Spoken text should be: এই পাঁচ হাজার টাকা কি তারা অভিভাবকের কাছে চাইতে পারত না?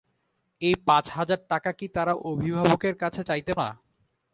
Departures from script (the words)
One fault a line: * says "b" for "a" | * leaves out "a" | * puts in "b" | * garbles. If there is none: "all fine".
* leaves out "পারত"